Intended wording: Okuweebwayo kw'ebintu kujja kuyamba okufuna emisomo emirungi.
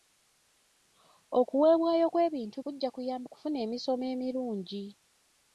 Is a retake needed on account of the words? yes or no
no